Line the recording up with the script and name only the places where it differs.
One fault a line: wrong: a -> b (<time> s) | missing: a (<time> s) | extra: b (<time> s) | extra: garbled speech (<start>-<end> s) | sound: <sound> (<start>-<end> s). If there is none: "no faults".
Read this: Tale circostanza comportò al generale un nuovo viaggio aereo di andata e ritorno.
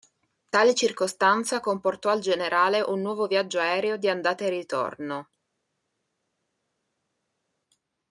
no faults